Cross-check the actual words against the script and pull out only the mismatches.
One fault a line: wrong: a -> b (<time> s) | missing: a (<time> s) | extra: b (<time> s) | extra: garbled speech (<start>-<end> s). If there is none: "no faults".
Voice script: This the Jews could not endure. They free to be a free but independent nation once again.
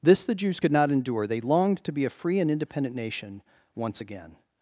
wrong: free -> longed (1.4 s)
wrong: but -> and (2.4 s)